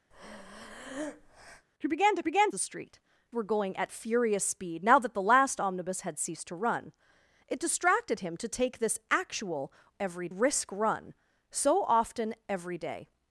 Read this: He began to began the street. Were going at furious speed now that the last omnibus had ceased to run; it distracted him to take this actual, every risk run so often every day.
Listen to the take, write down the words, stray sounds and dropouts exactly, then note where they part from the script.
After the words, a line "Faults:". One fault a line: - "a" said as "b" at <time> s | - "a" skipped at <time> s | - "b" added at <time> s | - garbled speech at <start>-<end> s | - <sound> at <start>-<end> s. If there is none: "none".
He began to began the street. Were going at furious speed now that the last omnibus had ceased to run; it distracted him to take this actual, every risk run so often every day.
Faults:
- breath at 0.1-1.7 s